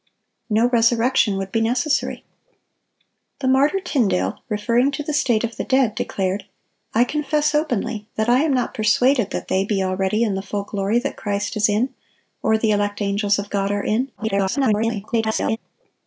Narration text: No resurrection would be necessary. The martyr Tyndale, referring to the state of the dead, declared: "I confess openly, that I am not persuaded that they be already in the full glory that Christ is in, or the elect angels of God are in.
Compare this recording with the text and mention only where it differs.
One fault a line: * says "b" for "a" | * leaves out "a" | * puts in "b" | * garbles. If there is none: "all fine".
* garbles